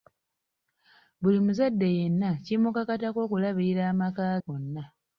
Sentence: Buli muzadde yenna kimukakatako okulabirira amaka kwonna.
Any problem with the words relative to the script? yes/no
no